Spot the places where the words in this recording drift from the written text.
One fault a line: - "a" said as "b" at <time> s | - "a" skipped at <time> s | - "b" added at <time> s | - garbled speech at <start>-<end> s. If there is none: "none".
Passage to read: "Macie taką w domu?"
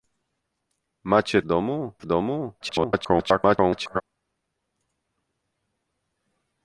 - "taką" said as "domu" at 1.4 s
- garbled speech at 2.6-4.0 s